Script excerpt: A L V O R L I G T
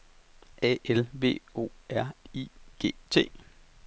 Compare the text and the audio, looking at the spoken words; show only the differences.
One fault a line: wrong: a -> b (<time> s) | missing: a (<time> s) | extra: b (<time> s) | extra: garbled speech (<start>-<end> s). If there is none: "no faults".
missing: L (2.1 s)